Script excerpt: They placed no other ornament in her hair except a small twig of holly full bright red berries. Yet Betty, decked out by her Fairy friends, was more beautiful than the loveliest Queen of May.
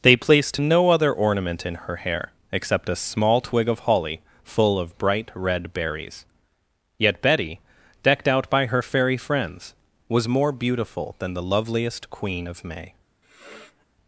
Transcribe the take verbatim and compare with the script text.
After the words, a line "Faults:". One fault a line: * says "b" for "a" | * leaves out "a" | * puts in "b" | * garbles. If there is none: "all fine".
They placed no other ornament in her hair except a small twig of holly full of bright red berries. Yet Betty, decked out by her Fairy friends, was more beautiful than the loveliest Queen of May.
Faults:
* puts in "of"